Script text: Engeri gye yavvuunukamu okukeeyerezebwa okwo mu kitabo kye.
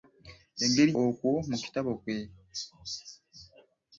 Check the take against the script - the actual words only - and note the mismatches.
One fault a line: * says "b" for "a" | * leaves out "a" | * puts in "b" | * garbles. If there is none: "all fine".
* leaves out "gye yavvuunukamu okukeeyerezebwa"